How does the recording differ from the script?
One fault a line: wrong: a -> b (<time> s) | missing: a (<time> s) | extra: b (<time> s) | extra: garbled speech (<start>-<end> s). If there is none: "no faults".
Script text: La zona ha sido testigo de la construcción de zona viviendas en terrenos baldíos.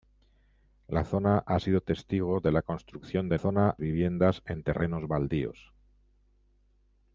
no faults